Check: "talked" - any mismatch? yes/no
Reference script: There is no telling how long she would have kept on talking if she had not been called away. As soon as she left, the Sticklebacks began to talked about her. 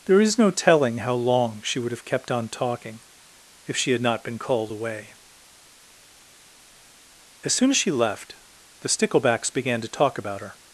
yes